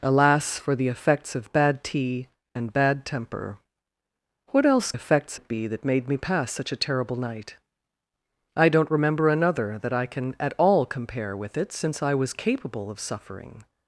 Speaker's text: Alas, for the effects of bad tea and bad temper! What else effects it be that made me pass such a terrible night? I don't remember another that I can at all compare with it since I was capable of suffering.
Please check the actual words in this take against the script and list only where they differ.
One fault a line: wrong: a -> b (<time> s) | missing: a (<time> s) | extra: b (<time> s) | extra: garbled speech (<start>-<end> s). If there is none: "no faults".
no faults